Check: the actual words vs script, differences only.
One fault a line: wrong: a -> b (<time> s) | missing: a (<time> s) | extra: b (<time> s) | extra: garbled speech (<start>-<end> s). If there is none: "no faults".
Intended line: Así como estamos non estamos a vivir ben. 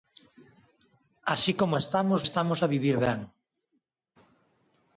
missing: non (2.2 s)